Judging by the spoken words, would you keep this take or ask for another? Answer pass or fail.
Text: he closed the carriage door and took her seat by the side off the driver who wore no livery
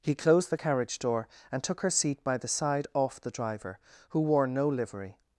pass